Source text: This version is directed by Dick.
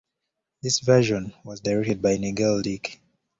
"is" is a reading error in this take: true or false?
true